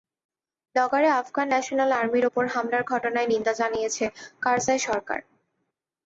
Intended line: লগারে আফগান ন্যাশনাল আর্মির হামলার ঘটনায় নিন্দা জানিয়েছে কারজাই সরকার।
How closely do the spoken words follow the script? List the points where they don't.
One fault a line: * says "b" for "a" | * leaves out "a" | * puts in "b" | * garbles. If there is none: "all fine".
* puts in "ওপর"